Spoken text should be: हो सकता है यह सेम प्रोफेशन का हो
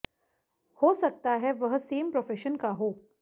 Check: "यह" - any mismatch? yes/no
yes